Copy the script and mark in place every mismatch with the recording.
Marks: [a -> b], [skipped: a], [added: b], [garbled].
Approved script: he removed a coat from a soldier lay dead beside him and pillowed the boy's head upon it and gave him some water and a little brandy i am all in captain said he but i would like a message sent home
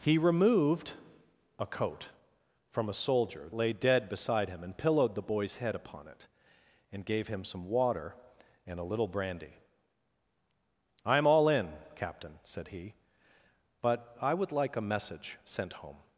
he removed a coat from a soldier lay dead beside him and pillowed the boy's head upon it and gave him some water and a little brandy i am all in captain said he but i would like a message sent home